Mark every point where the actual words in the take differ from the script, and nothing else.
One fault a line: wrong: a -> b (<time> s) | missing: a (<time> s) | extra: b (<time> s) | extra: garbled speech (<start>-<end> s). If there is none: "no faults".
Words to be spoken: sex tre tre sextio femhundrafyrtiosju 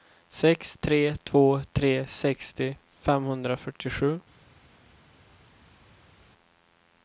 extra: två (1.2 s)